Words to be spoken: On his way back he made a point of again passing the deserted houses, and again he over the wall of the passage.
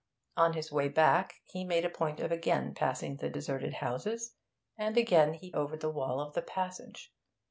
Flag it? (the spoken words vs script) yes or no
no